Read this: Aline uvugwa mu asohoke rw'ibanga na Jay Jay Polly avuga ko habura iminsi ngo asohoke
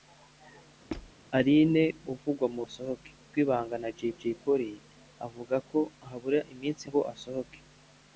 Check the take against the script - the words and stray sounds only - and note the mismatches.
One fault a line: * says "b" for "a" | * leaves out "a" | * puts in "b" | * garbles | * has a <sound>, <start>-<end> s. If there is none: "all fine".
* has a squeak, 0.9-1.1 s